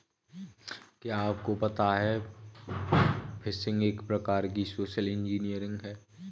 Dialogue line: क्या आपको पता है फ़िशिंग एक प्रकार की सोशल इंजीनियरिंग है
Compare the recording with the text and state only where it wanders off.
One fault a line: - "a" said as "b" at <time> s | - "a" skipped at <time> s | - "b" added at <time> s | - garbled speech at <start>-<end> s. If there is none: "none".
none